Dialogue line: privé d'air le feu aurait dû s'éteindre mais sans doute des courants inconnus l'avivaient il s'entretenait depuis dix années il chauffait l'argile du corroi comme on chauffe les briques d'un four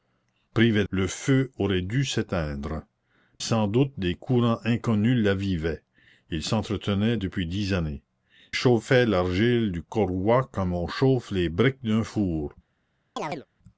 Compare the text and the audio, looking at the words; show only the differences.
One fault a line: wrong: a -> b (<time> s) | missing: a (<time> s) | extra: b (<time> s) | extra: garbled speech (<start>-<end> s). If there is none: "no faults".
missing: d'air (0.8 s)
missing: mais (2.8 s)
missing: il (8.0 s)